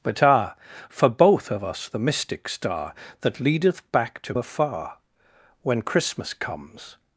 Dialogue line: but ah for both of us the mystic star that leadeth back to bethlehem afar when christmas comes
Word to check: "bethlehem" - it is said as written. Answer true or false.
false